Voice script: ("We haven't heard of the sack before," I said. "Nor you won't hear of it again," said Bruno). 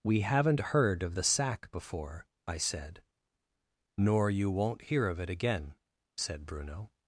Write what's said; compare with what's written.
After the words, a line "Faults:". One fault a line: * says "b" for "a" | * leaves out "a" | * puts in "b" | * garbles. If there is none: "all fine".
("We haven't heard of the sack before," I said. "Nor you won't hear of it again," said Bruno).
Faults:
all fine